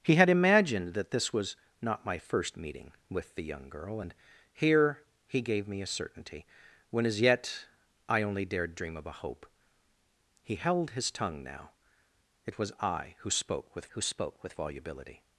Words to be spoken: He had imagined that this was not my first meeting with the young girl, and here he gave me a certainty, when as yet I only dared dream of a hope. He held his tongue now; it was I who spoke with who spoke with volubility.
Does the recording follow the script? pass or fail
pass